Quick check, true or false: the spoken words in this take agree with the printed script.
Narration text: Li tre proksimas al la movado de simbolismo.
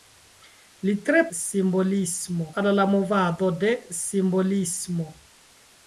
false